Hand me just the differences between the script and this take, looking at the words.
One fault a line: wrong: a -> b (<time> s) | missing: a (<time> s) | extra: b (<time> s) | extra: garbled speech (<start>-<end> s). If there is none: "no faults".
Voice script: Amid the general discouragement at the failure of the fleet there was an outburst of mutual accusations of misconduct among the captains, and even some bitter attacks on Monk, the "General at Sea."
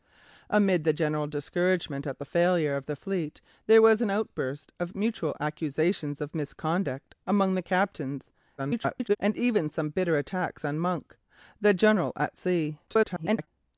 extra: garbled speech (8.6-9.2 s)
extra: garbled speech (12.9-13.5 s)